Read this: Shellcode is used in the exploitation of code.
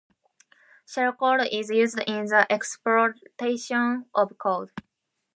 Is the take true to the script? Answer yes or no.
yes